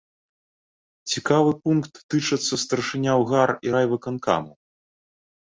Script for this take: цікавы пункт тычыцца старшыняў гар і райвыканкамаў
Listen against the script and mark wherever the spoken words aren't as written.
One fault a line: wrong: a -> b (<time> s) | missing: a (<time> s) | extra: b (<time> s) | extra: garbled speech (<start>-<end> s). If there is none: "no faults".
no faults